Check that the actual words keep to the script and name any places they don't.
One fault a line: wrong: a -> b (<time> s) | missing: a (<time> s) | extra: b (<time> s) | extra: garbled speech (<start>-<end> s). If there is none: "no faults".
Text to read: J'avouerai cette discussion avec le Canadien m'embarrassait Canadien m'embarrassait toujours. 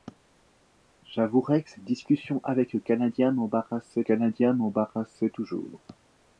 no faults